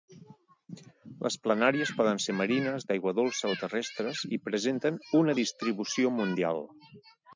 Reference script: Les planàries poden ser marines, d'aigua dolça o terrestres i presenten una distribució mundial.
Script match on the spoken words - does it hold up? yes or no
yes